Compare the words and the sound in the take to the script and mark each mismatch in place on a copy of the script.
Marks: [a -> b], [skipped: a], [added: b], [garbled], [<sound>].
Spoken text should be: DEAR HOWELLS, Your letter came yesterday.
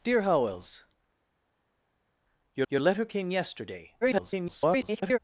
DEAR HOWELLS, Your [added: Your] letter came yesterday. [garbled]